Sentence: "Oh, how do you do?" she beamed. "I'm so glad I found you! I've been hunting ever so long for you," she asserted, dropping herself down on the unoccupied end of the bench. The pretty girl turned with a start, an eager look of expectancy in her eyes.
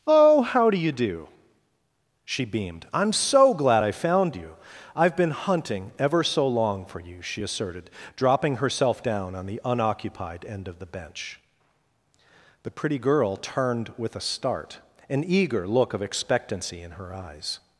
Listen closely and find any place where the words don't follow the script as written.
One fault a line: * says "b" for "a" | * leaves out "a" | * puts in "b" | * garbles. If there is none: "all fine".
all fine